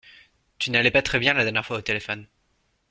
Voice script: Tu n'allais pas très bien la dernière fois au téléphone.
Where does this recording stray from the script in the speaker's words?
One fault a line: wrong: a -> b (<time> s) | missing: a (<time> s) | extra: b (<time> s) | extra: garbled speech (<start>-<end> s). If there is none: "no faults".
no faults